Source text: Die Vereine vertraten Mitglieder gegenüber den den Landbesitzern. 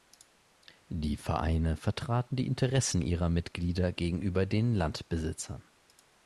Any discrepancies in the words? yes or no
yes